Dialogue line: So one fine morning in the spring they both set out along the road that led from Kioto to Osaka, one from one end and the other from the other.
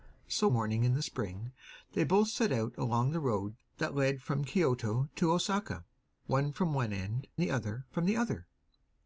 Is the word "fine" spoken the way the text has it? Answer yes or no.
no